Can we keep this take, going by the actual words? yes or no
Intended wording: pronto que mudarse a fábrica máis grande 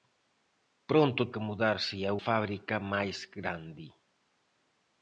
yes